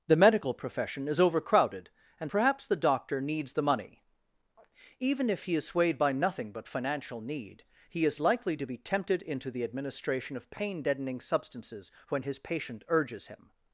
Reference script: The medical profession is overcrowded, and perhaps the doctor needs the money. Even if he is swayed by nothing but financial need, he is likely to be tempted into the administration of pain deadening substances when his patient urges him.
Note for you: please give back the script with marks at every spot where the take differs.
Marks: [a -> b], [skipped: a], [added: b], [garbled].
The medical profession is overcrowded, and perhaps the doctor needs the money. Even if he is swayed by nothing but financial need, he is likely to be tempted into the administration of pain deadening substances when his patient urges him.